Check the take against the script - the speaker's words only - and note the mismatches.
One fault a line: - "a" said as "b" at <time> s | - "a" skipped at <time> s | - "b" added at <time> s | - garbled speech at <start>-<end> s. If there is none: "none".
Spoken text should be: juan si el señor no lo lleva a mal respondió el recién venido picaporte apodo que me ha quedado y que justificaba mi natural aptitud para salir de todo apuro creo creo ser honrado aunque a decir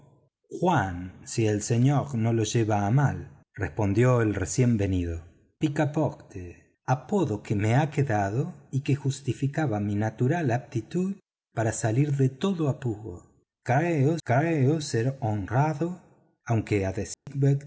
none